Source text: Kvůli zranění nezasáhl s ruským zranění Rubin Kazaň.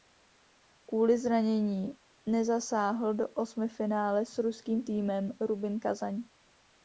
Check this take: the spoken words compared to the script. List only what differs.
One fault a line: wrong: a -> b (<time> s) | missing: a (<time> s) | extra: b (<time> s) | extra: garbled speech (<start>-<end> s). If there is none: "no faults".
extra: do osmifinále (3.1 s)
wrong: zranění -> týmem (4.8 s)